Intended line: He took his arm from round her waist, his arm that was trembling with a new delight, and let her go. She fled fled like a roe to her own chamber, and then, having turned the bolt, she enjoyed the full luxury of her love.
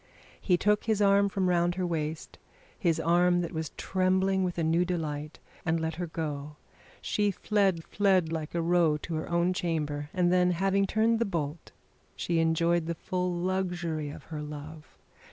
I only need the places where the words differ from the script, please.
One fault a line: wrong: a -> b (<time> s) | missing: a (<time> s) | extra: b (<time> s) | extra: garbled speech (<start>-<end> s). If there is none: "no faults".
no faults